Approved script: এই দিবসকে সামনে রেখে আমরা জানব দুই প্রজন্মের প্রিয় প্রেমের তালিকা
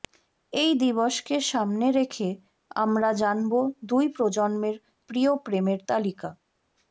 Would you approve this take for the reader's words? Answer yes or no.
yes